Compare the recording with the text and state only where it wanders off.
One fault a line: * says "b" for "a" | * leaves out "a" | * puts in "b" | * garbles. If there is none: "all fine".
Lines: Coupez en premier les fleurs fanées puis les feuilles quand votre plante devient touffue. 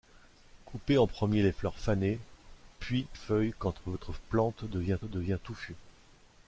* leaves out "les"
* puts in "devient"